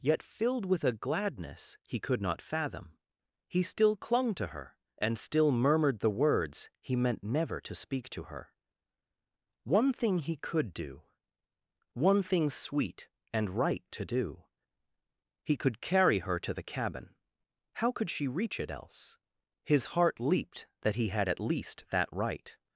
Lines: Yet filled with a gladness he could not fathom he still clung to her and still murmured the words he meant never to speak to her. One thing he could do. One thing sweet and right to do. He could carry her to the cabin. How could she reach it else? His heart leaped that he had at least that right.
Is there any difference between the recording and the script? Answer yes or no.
no